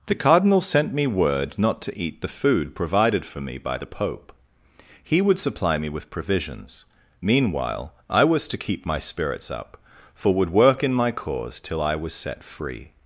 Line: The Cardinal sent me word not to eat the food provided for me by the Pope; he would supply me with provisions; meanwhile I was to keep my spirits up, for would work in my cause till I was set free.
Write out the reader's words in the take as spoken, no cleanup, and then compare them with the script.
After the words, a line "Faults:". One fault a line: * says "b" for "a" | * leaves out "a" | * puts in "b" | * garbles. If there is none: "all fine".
The Cardinal sent me word not to eat the food provided for me by the Pope; he would supply me with provisions; meanwhile I was to keep my spirits up, for would work in my cause till I was set free.
Faults:
all fine